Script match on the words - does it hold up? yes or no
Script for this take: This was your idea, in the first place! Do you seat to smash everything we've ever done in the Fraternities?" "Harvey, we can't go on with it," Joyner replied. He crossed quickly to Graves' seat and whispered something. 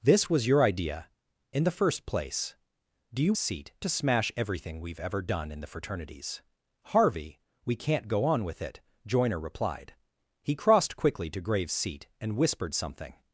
yes